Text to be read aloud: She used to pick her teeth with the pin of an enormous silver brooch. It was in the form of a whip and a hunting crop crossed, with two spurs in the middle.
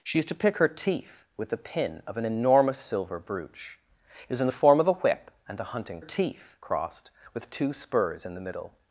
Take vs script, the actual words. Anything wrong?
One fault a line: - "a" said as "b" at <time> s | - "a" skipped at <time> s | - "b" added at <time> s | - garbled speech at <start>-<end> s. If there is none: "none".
- "crop" said as "teeth" at 6.0 s